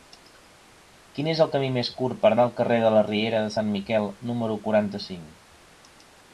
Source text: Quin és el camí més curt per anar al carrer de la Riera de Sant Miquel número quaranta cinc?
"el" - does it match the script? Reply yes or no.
yes